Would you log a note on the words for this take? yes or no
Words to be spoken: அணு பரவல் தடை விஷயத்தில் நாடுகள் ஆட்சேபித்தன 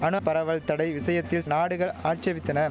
no